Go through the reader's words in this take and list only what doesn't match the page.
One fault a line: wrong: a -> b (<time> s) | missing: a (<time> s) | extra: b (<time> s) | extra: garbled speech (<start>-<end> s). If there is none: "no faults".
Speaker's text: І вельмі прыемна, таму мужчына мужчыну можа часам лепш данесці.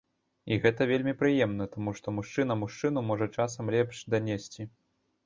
extra: гэта (0.6 s)
extra: што (2.0 s)